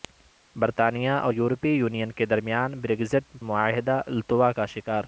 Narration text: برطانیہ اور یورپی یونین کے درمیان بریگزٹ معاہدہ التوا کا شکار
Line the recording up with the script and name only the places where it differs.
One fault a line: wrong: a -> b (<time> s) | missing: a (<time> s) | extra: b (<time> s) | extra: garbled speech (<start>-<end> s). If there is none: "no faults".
no faults